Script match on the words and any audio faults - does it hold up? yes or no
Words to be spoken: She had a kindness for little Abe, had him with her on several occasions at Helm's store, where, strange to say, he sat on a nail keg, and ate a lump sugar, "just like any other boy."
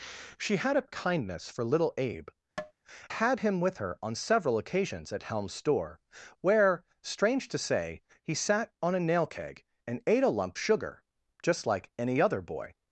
no